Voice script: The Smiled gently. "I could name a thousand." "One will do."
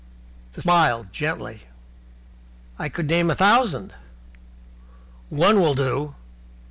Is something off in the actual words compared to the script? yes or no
no